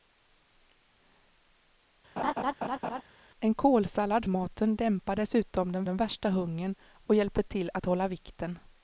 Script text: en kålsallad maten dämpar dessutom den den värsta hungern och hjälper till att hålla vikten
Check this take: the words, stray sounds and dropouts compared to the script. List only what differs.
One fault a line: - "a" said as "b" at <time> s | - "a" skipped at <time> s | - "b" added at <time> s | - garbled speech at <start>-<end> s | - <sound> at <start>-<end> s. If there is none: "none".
- laugh at 2.2-3.0 s